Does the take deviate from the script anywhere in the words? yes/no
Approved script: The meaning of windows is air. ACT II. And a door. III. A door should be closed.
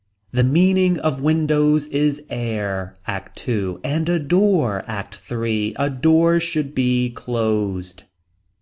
yes